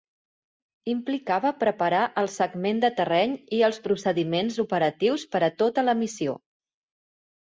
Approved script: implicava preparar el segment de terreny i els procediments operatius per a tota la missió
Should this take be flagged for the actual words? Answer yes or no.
no